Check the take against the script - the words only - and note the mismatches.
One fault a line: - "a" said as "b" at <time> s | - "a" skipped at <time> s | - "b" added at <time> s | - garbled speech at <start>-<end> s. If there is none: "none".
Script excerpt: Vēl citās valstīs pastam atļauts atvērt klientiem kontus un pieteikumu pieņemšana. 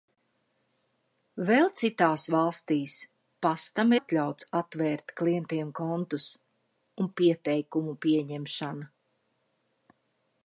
none